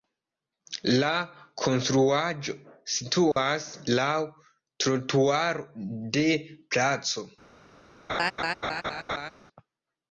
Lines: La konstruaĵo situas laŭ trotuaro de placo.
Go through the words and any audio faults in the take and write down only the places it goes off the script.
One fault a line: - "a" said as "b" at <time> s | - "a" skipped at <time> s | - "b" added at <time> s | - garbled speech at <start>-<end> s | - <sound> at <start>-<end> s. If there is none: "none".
- dropout at 3.3-3.4 s
- laugh at 8.1-9.3 s